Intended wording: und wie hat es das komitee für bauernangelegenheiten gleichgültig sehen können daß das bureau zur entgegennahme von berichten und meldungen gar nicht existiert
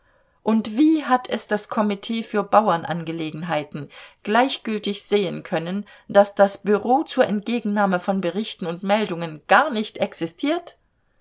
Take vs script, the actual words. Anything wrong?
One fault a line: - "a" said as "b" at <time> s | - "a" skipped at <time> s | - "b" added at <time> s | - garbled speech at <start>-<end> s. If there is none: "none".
none